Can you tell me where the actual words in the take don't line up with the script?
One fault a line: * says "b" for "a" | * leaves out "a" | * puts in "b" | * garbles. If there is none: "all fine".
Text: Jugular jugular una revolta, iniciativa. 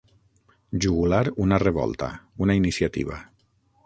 * leaves out "jugular"
* puts in "una"